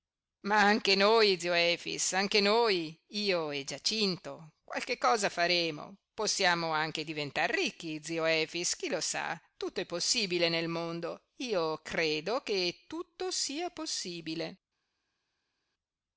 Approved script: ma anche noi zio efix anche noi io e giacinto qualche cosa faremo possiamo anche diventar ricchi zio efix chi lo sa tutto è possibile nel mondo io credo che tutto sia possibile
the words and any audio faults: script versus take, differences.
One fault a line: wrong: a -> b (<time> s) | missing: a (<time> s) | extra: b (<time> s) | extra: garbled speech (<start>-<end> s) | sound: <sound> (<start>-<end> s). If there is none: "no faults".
no faults